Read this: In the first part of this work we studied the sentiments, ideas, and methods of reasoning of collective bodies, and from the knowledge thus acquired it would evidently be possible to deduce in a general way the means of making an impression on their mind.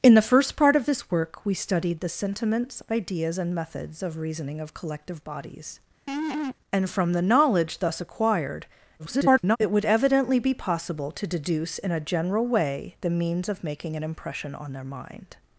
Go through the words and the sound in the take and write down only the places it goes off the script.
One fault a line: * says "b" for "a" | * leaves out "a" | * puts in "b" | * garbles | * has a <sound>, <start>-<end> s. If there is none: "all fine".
* has a laugh, 6.1-6.6 s
* garbles